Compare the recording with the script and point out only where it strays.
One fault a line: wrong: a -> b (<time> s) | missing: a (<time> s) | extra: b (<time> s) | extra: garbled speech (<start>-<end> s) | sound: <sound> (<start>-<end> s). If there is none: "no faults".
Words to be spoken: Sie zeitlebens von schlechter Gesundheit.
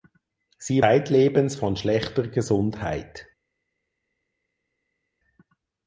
no faults